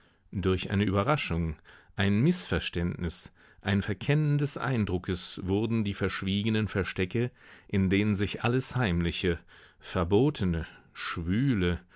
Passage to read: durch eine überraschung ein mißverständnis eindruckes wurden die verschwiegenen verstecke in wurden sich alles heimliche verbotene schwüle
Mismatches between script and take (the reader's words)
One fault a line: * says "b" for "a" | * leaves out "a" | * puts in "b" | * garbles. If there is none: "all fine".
* puts in "ein verkennen des"
* says "denen" for "wurden"